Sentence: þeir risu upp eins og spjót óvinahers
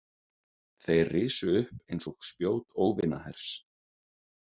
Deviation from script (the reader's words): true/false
false